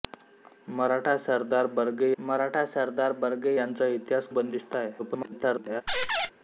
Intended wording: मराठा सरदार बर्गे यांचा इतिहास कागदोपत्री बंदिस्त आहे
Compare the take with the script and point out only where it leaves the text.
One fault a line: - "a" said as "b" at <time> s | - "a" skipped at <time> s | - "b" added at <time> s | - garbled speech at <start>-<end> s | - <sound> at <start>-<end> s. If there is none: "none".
- "मराठा सरदार बर्गे" added at 2.2 s
- "कागदोपत्री" skipped at 4.3 s
- garbled speech at 5.0-5.8 s
- squeak at 5.9-6.3 s